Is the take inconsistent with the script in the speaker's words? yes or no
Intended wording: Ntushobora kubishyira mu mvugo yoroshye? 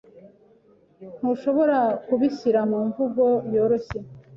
no